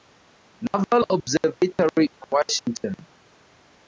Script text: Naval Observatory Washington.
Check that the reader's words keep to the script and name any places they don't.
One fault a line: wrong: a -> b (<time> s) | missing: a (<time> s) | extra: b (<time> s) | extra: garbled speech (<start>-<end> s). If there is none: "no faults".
extra: in (2.1 s)